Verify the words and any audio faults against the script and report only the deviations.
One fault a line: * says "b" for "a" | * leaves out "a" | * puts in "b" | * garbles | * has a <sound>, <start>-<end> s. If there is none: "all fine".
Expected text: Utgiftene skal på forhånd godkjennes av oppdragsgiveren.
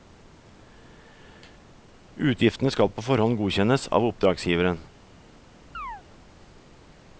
* has a chirp, 5.7-6.0 s